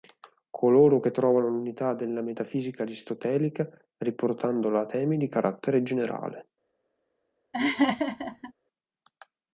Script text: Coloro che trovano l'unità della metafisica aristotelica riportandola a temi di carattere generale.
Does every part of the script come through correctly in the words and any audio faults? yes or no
no